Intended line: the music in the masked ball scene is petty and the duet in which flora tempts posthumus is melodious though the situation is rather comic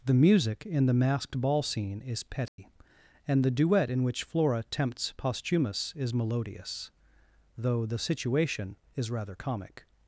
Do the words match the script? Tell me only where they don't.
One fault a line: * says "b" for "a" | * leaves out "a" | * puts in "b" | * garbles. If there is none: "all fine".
all fine